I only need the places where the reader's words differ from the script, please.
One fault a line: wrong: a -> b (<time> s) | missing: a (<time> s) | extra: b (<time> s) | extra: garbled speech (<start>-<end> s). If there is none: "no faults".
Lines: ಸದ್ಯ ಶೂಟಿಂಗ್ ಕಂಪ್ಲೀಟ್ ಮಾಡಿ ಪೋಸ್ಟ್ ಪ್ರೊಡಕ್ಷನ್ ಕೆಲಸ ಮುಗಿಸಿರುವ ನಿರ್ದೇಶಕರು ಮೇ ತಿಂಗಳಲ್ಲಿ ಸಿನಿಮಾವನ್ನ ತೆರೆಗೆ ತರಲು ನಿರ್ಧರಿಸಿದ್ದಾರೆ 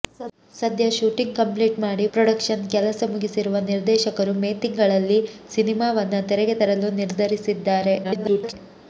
missing: ಪೋಸ್ಟ್ (2.0 s)
extra: garbled speech (8.0-8.5 s)